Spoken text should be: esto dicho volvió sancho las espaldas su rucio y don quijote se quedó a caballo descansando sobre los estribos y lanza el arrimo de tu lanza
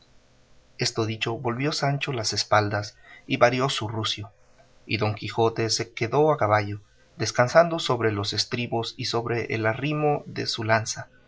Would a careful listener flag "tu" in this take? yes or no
yes